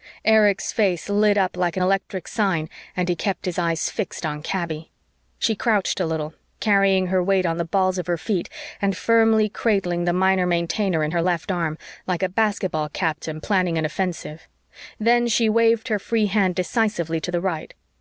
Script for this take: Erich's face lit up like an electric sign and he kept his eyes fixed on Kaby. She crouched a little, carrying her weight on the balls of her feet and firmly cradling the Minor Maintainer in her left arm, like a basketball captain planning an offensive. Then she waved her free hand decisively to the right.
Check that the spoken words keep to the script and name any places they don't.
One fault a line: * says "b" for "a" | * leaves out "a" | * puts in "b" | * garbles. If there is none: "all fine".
all fine